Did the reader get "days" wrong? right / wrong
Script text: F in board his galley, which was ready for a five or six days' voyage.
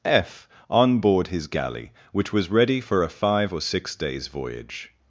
right